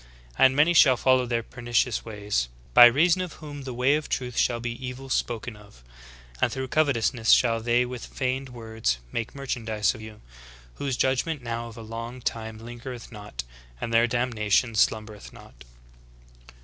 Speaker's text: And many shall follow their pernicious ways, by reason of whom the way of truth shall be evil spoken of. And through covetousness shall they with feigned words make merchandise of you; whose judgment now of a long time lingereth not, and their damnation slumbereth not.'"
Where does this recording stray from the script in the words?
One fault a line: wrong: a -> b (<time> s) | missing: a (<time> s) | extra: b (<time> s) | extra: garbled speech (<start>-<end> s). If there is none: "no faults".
no faults